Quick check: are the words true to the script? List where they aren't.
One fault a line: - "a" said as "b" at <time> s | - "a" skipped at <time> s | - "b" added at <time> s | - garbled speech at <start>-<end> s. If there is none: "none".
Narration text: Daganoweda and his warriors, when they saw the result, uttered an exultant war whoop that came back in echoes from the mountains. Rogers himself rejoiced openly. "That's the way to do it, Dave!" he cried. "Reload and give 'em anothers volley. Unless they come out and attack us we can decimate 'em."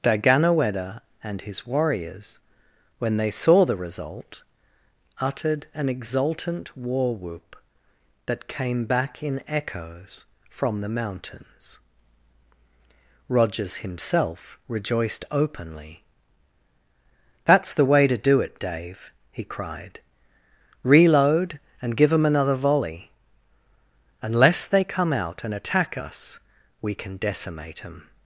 - "anothers" said as "another" at 22.2 s